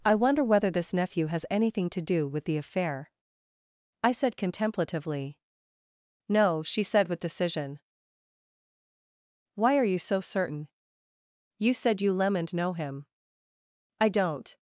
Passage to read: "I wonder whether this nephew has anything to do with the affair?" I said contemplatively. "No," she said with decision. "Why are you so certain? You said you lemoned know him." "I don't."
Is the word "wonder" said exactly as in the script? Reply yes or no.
yes